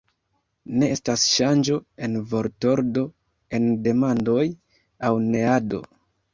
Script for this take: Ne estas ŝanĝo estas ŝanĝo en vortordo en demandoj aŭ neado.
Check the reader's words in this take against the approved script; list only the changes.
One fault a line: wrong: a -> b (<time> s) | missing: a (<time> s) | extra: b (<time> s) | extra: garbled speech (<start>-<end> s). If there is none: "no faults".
missing: estas ŝanĝo (1.8 s)